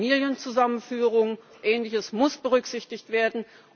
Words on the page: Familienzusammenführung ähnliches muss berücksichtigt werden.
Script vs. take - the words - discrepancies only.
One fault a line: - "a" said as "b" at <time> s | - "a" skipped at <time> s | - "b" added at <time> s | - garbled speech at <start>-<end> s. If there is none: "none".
none